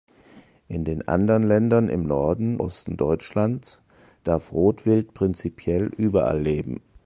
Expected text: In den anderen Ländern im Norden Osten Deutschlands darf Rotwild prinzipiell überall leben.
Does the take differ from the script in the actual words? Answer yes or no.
no